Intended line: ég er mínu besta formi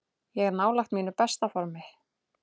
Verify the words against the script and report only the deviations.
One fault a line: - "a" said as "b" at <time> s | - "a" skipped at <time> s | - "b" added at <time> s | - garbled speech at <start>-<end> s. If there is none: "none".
- "nálægt" added at 0.6 s